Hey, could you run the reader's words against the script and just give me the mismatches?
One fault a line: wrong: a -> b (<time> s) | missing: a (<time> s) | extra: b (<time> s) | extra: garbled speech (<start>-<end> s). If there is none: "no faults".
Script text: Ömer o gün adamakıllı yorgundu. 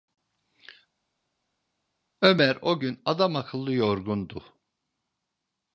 no faults